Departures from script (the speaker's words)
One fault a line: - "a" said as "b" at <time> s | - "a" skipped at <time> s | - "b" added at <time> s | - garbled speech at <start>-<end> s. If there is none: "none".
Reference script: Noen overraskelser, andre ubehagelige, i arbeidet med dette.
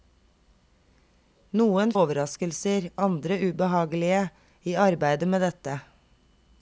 none